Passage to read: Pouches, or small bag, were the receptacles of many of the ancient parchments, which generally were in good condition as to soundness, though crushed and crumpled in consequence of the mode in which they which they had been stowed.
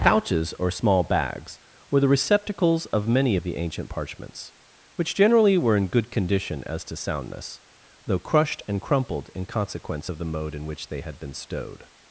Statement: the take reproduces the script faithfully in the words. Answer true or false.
false